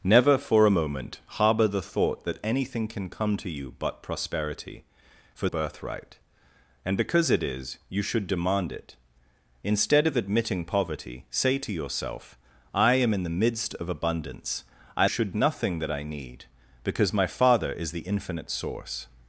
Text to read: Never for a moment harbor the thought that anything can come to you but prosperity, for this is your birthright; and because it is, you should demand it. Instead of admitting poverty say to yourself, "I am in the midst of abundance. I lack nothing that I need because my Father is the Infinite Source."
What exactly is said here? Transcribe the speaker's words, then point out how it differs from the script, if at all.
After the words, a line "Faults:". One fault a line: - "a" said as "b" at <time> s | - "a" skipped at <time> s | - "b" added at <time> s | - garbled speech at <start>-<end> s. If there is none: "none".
Never for a moment harbor the thought that anything can come to you but prosperity, for birthright; and because it is, you should demand it. Instead of admitting poverty say to yourself, "I am in the midst of abundance. I should nothing that I need because my Father is the Infinite Source."
Faults:
- "this is your" skipped at 5.5 s
- "lack" said as "should" at 15.1 s